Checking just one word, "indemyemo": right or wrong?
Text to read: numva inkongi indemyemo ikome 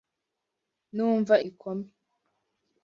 wrong